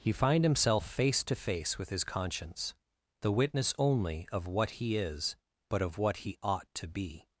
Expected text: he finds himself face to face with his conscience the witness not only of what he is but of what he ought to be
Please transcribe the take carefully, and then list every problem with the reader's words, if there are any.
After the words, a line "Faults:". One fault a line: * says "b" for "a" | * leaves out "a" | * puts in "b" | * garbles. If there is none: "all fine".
he find himself face to face with his conscience the witness only of what he is but of what he ought to be
Faults:
* says "find" for "finds"
* leaves out "not"